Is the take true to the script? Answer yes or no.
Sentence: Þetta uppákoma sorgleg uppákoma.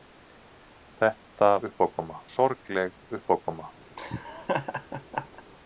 yes